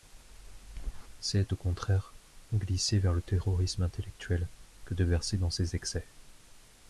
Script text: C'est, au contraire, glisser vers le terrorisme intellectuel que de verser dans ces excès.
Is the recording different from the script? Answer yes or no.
no